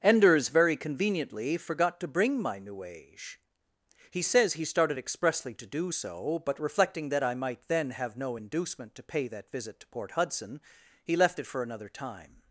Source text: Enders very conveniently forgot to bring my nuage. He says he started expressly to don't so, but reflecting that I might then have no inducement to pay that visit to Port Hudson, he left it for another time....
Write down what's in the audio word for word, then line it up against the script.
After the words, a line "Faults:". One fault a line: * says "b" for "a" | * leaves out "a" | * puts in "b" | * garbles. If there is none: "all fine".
Enders very conveniently forgot to bring my nuage. He says he started expressly to do so, but reflecting that I might then have no inducement to pay that visit to Port Hudson, he left it for another time....
Faults:
* says "do" for "don't"